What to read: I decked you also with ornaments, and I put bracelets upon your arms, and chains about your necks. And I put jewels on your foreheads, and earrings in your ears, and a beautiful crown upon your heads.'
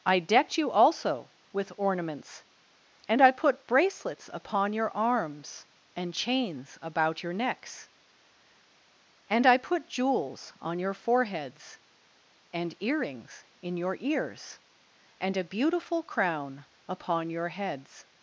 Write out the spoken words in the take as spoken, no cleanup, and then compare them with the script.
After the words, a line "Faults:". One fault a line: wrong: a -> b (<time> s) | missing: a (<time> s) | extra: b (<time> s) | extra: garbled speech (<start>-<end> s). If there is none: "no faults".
I decked you also with ornaments, and I put bracelets upon your arms, and chains about your necks. And I put jewels on your foreheads, and earrings in your ears, and a beautiful crown upon your heads.'
Faults:
no faults